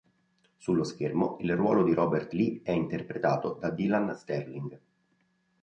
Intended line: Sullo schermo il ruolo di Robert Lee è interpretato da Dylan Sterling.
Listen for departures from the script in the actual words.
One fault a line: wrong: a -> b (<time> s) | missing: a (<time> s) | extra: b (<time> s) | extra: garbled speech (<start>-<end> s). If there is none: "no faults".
no faults